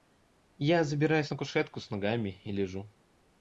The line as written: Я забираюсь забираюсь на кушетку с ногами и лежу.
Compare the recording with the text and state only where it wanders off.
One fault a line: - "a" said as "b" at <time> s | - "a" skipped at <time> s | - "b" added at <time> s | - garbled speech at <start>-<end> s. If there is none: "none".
- "забираюсь" skipped at 1.3 s